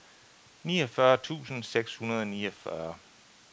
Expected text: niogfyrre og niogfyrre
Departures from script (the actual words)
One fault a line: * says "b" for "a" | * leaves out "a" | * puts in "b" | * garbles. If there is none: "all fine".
* puts in "tusind seks hundrede"